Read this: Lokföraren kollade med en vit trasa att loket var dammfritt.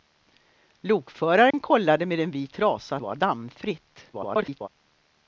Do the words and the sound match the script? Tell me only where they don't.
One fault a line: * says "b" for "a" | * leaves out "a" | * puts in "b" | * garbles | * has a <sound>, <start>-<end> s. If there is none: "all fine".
* has a dropout, 1.5-1.5 s
* leaves out "att loket"
* garbles